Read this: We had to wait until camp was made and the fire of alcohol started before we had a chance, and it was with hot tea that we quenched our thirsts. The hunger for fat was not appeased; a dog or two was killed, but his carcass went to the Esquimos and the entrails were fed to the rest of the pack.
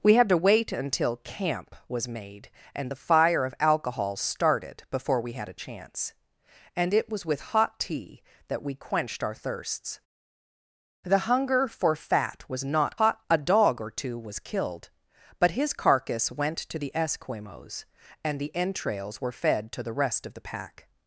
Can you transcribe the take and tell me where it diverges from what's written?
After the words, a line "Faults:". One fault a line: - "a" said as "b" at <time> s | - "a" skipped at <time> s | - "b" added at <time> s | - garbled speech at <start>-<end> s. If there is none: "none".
We had to wait until camp was made and the fire of alcohol started before we had a chance, and it was with hot tea that we quenched our thirsts. The hunger for fat was not hot; a dog or two was killed, but his carcass went to the Esquimos and the entrails were fed to the rest of the pack.
Faults:
- "appeased" said as "hot" at 13.0 s